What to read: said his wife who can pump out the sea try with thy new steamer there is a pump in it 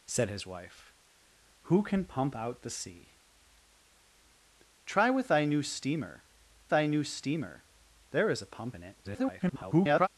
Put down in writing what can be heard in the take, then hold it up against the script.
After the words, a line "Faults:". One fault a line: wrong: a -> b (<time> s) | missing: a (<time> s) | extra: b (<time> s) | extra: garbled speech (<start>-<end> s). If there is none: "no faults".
said his wife who can pump out the sea try with thy new steamer thy new steamer there is a pump in it [garbled]
Faults:
extra: thy new steamer (6.7 s)
extra: garbled speech (9.0-10.1 s)